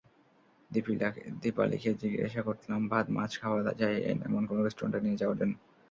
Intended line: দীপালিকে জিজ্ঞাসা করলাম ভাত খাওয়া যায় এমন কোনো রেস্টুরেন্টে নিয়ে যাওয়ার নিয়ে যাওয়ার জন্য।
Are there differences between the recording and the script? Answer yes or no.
yes